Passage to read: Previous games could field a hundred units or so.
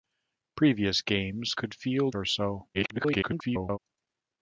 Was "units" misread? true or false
true